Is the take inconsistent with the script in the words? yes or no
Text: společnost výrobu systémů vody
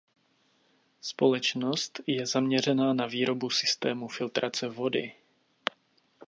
yes